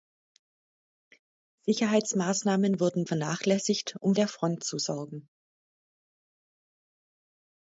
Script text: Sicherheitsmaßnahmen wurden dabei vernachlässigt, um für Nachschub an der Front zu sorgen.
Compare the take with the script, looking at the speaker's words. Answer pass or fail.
fail